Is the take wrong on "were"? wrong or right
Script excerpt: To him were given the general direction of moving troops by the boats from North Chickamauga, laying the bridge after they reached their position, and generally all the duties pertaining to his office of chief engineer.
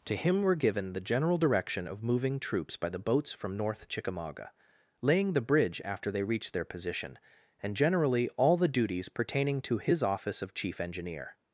right